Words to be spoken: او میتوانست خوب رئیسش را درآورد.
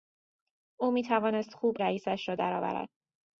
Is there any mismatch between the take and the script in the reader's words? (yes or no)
no